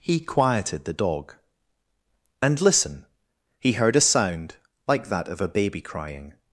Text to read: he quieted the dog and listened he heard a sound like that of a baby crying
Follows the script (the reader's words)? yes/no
no